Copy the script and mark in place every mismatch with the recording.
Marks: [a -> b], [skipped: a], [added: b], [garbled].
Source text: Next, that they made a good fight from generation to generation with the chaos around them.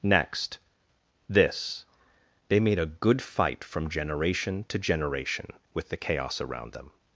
Next, [that -> this] they made a good fight from generation to generation with the chaos around them.